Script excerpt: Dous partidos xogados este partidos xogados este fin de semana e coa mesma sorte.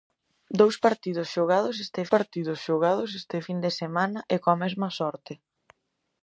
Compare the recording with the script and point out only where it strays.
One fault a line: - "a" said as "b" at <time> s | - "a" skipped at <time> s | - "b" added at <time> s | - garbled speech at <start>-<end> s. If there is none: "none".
none